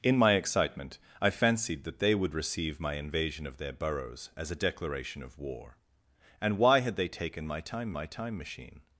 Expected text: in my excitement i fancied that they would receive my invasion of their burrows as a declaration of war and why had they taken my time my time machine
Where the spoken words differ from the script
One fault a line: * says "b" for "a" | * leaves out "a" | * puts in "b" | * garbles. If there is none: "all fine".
all fine